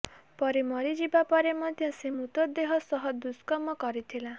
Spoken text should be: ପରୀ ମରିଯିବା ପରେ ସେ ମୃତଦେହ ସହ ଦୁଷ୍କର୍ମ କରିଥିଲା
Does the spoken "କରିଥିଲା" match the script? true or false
true